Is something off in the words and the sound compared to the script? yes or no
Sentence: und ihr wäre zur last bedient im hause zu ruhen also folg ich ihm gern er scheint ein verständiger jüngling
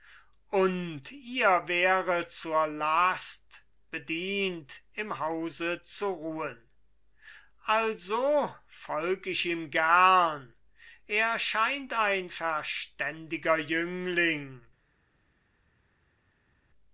no